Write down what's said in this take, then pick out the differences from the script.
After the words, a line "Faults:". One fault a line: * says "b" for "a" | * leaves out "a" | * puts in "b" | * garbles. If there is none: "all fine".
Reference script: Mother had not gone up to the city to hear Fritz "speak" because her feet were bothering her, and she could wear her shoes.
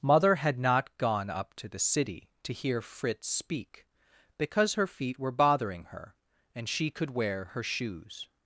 Mother had not gone up to the city to hear Fritz "speak" because her feet were bothering her, and she could wear her shoes.
Faults:
all fine